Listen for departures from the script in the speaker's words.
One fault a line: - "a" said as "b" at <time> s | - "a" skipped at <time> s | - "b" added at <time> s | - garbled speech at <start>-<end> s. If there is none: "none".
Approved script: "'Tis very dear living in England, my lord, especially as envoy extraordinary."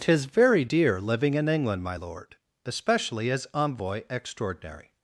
none